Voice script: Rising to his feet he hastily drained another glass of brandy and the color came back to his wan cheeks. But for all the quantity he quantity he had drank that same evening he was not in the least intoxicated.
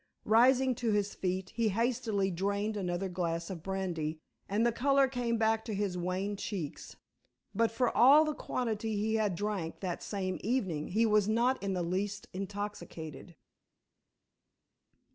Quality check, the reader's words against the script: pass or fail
fail